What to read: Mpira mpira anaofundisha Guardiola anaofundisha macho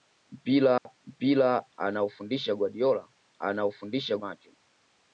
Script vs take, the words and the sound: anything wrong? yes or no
yes